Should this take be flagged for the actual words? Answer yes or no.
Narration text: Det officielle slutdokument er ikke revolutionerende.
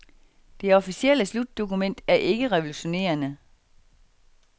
no